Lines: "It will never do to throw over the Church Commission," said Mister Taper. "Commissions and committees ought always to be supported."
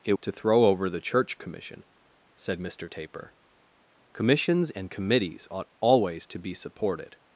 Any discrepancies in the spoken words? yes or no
yes